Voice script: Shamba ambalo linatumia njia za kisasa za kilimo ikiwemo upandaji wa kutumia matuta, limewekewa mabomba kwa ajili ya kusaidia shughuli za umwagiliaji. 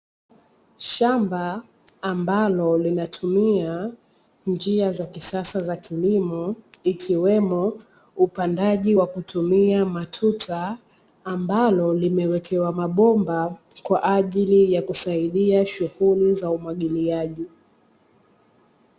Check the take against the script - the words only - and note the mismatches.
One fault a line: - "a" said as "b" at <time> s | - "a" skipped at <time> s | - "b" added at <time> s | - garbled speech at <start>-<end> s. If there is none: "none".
- "ambalo" added at 11.2 s